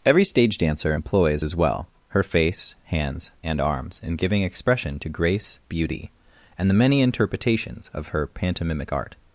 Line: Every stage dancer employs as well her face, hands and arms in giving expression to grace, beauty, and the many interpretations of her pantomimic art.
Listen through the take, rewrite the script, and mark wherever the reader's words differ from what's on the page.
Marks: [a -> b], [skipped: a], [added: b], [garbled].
Every stage dancer employs as well her face, hands and arms in giving expression to grace, beauty, and the many interpretations of her pantomimic art.